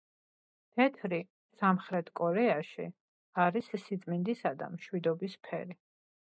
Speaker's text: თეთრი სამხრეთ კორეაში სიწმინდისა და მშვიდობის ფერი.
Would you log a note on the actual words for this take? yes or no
yes